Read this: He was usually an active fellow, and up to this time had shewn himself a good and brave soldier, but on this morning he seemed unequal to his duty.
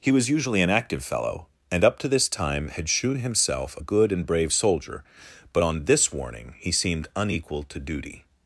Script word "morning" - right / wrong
wrong